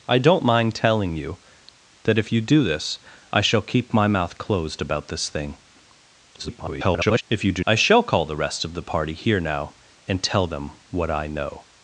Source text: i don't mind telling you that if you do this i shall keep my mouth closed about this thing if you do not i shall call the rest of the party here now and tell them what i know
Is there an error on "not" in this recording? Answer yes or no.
yes